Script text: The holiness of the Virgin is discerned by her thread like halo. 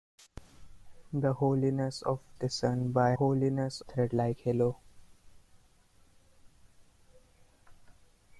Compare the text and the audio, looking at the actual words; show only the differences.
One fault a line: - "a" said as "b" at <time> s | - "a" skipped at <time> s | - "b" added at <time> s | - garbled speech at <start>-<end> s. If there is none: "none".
- "the Virgin is" skipped at 2.2 s
- "her" said as "holiness" at 3.1 s